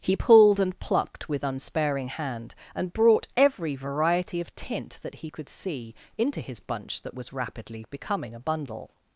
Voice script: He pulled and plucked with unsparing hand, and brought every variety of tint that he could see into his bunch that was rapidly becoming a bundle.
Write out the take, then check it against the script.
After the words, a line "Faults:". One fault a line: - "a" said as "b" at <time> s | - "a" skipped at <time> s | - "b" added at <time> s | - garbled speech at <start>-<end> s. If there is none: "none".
He pulled and plucked with unsparing hand, and brought every variety of tint that he could see into his bunch that was rapidly becoming a bundle.
Faults:
none